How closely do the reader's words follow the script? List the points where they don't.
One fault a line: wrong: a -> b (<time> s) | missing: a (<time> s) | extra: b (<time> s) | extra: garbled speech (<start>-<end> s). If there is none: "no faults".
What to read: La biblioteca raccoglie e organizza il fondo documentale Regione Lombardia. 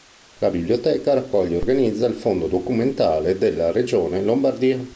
extra: della (3.4 s)